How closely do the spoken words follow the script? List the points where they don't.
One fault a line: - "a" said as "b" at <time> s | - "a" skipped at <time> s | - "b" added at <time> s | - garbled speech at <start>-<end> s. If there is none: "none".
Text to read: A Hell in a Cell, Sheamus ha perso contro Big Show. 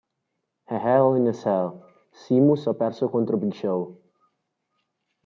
none